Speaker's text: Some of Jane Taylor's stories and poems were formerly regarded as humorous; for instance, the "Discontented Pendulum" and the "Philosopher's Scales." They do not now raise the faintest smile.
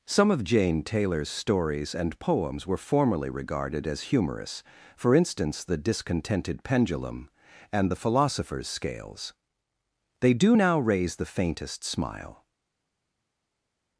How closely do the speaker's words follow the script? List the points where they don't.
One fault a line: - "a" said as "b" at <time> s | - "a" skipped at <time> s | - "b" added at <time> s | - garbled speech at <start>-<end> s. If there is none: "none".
- "not" skipped at 10.6 s